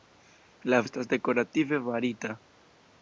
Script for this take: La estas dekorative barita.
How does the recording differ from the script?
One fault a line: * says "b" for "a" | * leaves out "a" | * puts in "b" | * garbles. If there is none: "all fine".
all fine